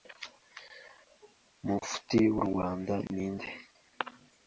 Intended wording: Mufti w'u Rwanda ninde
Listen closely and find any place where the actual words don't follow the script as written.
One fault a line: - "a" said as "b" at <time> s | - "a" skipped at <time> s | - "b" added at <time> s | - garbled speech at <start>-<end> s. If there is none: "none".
none